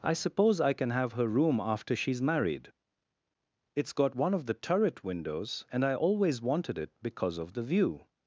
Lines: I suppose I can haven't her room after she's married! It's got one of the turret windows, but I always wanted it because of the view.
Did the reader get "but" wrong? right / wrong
wrong